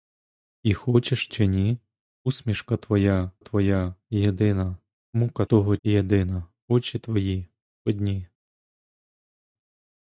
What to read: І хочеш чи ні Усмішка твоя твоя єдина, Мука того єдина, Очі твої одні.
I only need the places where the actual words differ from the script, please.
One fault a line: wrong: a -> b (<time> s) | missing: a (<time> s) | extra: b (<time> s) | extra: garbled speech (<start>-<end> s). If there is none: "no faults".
no faults